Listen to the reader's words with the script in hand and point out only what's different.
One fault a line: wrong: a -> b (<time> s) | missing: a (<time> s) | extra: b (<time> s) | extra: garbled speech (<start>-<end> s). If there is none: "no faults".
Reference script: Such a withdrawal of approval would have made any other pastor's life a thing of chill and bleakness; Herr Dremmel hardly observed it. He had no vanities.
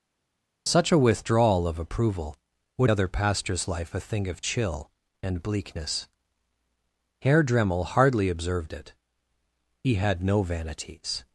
missing: have made any (2.9 s)